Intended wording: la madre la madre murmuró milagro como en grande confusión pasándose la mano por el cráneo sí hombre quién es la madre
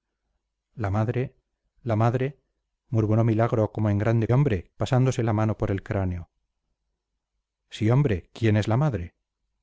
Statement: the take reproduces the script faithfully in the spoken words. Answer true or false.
false